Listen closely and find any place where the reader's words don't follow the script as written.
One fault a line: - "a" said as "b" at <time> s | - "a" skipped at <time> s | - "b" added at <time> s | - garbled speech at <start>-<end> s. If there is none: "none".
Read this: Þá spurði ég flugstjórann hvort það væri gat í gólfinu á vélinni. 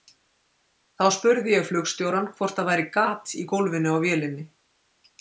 none